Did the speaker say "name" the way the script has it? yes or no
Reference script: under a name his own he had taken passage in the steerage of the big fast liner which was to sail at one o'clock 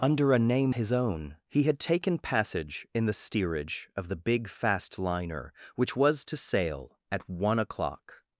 yes